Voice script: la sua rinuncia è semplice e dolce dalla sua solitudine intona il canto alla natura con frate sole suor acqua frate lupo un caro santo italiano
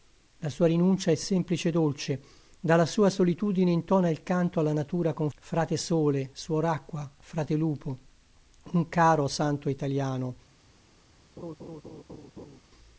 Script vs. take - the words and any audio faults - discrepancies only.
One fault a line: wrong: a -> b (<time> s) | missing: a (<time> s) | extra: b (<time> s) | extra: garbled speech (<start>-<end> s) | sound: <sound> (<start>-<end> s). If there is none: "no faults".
sound: laugh (11.4-12.6 s)